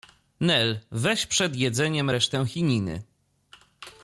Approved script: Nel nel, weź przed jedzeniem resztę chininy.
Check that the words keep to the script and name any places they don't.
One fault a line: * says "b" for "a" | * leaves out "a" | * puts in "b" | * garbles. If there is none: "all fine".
* leaves out "nel"